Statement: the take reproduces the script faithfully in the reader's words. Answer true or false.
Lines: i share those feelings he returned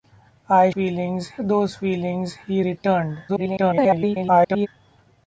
false